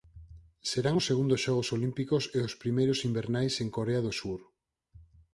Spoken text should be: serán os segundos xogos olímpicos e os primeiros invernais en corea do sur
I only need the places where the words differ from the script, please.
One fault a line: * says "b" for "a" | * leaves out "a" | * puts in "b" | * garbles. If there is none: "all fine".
all fine